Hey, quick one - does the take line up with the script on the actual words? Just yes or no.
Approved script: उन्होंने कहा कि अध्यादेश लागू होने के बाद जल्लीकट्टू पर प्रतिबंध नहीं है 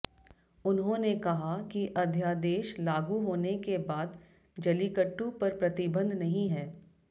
yes